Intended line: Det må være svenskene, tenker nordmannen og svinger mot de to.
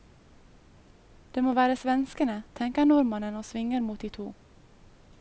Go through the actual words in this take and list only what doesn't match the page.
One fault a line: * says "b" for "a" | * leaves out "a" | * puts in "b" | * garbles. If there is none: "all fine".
all fine